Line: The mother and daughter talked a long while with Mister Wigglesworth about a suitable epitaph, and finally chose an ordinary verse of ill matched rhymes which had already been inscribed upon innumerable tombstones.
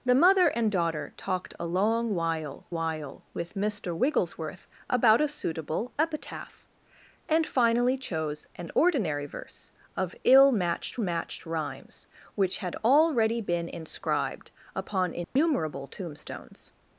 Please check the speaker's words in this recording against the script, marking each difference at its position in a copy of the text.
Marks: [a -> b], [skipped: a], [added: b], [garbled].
The mother and daughter talked a long while [added: while] with Mister Wigglesworth about a suitable epitaph, and finally chose an ordinary verse of ill matched [added: matched] rhymes which had already been inscribed upon innumerable tombstones.